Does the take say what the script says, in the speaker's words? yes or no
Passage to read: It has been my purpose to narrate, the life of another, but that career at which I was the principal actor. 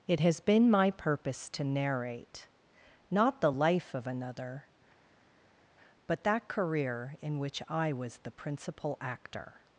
no